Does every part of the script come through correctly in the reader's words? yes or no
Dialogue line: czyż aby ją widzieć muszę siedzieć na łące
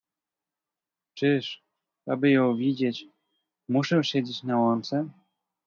yes